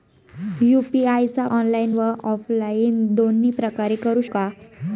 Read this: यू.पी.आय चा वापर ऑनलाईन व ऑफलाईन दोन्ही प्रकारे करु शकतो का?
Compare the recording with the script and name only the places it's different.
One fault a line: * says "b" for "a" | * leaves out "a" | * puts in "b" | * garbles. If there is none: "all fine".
* leaves out "वापर"
* leaves out "शकतो"